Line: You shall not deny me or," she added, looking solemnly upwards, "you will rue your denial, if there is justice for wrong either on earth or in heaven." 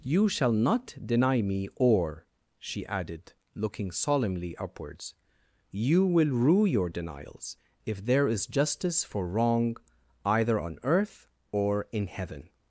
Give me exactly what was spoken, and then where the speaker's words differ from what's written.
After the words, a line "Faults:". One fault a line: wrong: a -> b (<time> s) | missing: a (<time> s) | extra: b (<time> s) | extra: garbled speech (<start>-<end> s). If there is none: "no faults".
You shall not deny me or," she added, looking solemnly upwards, "you will rue your denials, if there is justice for wrong either on earth or in heaven."
Faults:
wrong: denial -> denials (6.9 s)